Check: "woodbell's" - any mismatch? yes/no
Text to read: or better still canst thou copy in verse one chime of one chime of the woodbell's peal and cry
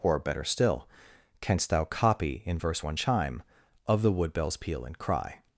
no